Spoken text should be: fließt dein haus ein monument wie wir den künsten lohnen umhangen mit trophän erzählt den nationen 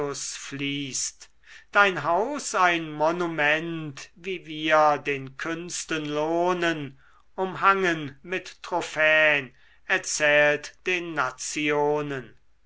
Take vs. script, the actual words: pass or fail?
pass